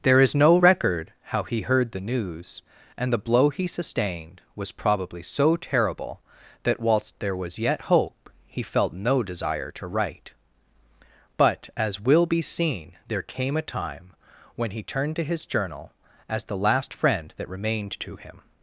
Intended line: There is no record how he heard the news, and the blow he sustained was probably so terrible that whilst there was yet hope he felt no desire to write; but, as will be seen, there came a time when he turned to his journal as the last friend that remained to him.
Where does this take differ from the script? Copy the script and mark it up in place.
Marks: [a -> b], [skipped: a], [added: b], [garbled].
There is no record how he heard the news, and the blow he sustained was probably so terrible that whilst there was yet hope he felt no desire to write; but, as will be seen, there came a time when he turned to his journal as the last friend that remained to him.